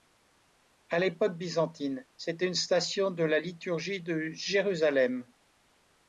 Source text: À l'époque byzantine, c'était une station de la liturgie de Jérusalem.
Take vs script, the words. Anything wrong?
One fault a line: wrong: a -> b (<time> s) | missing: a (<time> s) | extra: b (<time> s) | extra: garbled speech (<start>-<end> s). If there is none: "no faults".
no faults